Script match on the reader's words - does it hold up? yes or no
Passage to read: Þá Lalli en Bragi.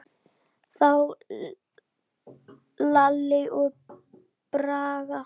no